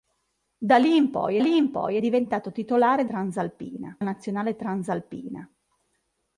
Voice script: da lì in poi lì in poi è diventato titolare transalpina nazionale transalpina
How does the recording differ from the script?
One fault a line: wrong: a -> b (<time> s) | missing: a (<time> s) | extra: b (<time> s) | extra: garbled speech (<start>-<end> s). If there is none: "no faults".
no faults